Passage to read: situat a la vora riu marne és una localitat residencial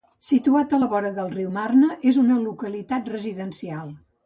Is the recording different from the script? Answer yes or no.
yes